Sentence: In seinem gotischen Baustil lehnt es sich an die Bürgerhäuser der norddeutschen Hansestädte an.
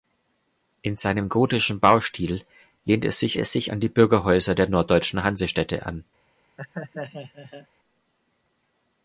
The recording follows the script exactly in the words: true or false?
false